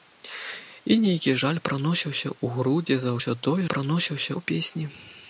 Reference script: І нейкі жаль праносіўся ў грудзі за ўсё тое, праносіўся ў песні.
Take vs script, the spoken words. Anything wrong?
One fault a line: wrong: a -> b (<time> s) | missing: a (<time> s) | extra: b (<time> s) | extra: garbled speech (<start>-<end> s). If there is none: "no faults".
no faults